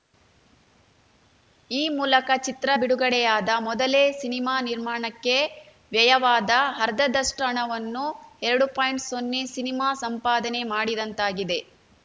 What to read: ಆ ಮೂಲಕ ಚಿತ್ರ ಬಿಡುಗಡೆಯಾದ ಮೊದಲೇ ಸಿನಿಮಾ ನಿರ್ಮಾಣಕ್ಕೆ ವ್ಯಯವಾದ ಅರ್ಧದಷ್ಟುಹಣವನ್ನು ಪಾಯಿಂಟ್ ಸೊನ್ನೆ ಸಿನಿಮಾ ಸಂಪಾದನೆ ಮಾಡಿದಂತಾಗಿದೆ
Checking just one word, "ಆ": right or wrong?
wrong